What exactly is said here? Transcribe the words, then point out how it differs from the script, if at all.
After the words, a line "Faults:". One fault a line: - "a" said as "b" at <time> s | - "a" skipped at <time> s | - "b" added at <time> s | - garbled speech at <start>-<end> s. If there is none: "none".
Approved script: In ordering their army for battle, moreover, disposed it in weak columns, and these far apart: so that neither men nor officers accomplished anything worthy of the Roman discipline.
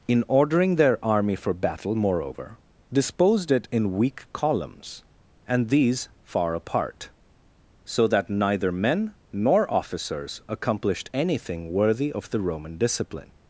In ordering their army for battle, moreover, disposed it in weak columns, and these far apart: so that neither men nor officers accomplished anything worthy of the Roman discipline.
Faults:
none